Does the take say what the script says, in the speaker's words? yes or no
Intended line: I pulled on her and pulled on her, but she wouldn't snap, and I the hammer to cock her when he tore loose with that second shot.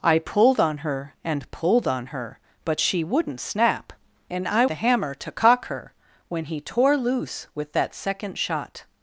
yes